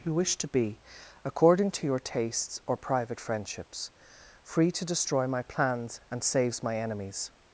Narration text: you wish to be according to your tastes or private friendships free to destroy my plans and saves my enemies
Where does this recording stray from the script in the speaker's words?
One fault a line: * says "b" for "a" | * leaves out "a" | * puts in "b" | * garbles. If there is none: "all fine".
all fine